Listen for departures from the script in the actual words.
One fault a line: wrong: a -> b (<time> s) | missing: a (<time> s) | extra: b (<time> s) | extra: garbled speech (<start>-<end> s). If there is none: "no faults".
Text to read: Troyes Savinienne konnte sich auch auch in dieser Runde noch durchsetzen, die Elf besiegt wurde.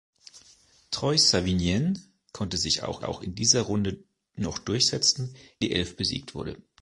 no faults